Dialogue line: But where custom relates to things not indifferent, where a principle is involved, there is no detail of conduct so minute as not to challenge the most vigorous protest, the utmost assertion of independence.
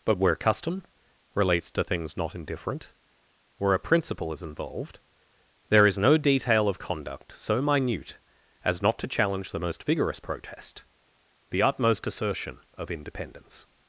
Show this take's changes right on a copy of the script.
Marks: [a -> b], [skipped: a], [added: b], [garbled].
But where custom relates to things not indifferent, where a principle is involved, there is no detail of conduct so minute as not to challenge the most vigorous protest, the utmost assertion of independence.